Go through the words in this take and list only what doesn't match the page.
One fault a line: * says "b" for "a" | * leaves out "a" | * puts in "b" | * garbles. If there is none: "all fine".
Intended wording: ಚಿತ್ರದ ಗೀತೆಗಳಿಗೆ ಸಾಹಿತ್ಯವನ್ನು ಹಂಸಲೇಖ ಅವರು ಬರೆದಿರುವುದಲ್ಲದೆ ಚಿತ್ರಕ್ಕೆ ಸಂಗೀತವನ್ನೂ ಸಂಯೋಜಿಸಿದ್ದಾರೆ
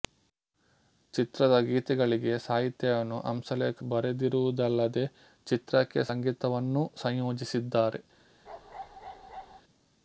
* leaves out "ಅವರು"